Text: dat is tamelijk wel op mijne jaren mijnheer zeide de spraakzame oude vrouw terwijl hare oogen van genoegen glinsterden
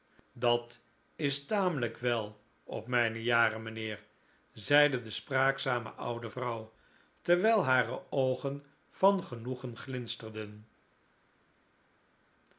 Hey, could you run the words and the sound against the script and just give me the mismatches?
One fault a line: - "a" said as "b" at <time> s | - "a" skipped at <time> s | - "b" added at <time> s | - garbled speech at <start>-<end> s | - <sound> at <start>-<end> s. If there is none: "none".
none